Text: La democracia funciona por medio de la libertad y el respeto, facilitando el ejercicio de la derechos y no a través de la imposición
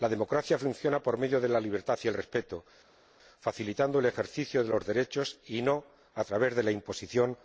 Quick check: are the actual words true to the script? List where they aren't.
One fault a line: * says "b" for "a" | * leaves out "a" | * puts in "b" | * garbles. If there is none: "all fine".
* says "los" for "la"